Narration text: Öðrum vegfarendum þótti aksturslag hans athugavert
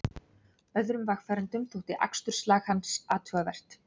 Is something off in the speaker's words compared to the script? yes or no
no